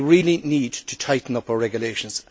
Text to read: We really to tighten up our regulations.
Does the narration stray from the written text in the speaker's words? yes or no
yes